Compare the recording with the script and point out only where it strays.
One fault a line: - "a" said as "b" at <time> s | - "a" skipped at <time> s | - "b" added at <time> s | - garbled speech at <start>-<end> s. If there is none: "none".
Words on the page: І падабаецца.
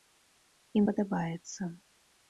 none